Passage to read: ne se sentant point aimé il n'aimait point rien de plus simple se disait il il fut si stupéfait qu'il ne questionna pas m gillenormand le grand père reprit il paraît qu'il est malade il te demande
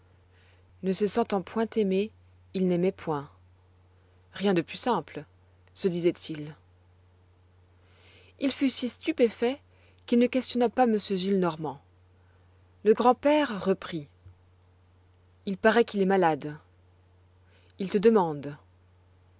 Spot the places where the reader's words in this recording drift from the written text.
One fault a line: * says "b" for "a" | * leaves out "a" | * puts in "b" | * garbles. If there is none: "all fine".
all fine